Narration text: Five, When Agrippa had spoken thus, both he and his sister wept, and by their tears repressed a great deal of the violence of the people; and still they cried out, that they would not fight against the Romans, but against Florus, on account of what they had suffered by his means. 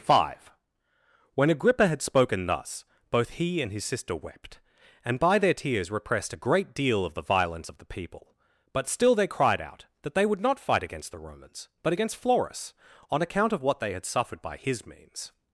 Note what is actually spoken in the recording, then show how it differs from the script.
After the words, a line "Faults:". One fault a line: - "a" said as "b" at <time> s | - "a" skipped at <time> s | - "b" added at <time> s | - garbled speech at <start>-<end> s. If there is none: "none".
Five, When Agrippa had spoken thus, both he and his sister wept, and by their tears repressed a great deal of the violence of the people; but still they cried out, that they would not fight against the Romans, but against Florus, on account of what they had suffered by his means.
Faults:
- "and" said as "but" at 8.7 s